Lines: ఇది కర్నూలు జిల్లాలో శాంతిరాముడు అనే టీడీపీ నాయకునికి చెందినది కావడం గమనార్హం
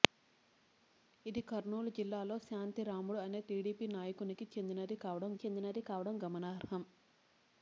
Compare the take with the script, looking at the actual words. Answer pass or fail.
fail